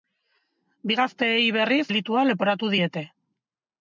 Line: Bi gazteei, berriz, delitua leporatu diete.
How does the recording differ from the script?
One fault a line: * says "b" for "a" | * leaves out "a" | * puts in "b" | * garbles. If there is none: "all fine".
all fine